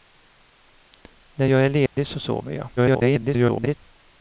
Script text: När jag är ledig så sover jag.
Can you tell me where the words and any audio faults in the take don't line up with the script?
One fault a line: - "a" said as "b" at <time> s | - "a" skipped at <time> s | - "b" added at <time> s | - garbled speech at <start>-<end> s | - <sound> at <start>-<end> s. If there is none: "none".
- dropout at 1.9-2.0 s
- garbled speech at 2.8-3.8 s